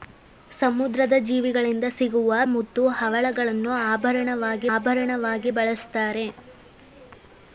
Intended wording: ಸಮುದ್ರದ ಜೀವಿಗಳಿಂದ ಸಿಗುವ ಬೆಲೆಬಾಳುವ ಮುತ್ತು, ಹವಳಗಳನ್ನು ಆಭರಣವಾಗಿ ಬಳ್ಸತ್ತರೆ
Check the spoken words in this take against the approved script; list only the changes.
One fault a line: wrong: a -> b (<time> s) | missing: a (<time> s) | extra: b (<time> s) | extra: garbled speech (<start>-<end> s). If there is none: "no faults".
missing: ಬೆಲೆಬಾಳುವ (2.4 s)
extra: ಆಭರಣವಾಗಿ (4.7 s)